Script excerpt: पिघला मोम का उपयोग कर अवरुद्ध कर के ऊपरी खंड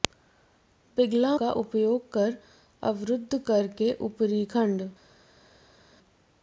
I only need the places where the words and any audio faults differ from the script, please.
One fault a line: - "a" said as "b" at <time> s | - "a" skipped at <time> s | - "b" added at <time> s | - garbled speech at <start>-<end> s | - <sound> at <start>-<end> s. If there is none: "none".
- "मोम" skipped at 1.4 s